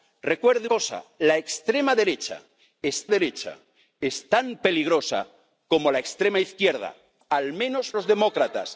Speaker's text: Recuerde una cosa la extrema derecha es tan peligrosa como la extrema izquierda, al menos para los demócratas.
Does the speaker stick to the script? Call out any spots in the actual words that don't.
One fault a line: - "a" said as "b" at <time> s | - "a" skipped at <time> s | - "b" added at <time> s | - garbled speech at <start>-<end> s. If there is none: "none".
- "una" skipped at 0.7 s
- "derecha es" added at 3.1 s
- "para" skipped at 7.9 s